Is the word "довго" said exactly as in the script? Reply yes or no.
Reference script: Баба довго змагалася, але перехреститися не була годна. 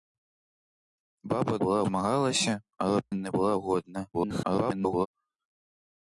no